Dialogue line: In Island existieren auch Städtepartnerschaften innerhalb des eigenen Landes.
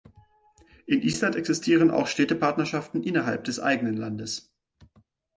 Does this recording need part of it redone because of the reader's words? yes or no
no